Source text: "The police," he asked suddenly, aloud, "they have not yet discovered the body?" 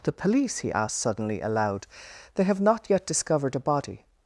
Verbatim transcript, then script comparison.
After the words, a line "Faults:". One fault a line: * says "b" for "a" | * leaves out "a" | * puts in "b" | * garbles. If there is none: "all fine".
"The police," he asked suddenly, aloud, "they have not yet discovered a body?"
Faults:
* says "a" for "the"